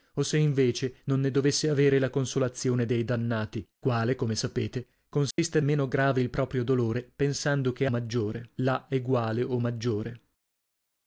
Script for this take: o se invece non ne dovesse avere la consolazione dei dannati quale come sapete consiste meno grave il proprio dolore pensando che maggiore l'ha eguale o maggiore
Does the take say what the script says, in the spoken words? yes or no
yes